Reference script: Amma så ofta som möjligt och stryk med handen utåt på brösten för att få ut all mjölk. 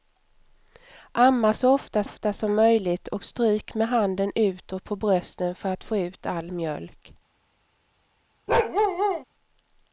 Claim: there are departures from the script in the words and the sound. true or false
true